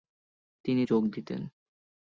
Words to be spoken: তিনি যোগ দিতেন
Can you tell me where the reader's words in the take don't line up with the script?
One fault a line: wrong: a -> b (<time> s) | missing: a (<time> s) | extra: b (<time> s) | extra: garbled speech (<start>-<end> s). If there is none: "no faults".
no faults